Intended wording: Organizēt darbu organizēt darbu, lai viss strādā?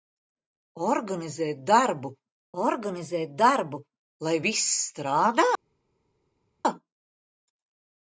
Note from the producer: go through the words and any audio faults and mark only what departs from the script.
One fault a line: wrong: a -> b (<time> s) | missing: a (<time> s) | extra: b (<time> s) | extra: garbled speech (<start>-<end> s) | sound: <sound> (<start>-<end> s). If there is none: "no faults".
no faults